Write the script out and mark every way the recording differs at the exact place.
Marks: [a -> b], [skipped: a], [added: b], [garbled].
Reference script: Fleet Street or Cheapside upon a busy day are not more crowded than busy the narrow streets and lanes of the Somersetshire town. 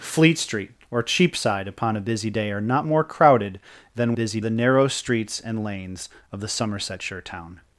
Fleet Street or Cheapside upon a busy day are not more crowded than busy the narrow streets and lanes of the Somersetshire town.